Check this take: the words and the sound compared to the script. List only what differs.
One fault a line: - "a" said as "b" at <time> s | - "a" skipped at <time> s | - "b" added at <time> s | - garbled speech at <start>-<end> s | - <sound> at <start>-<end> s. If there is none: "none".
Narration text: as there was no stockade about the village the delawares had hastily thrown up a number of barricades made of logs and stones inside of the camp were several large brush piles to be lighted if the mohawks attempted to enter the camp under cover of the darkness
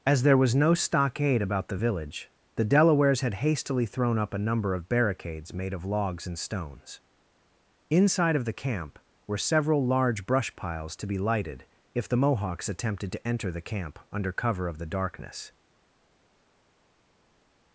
none